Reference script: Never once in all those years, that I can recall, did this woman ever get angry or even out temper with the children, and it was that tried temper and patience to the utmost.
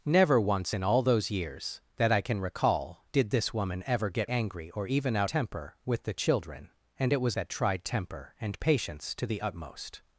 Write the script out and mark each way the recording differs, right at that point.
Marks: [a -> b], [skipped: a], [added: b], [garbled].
Never once in all those years, that I can recall, did this woman ever get angry or even out temper with the children, and it was that tried temper and patience to the utmost.